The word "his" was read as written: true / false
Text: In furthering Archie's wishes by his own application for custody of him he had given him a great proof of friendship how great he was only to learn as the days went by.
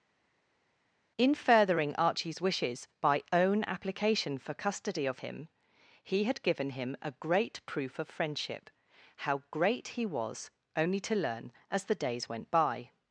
false